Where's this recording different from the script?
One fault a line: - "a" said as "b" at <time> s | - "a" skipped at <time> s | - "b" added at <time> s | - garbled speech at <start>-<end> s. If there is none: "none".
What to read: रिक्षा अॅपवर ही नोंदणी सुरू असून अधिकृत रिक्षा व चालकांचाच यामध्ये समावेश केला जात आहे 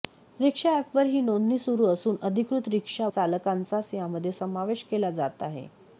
- "व" skipped at 3.1 s